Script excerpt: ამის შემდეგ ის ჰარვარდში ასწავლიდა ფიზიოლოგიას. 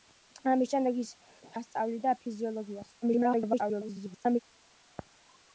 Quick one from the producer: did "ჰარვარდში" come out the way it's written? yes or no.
no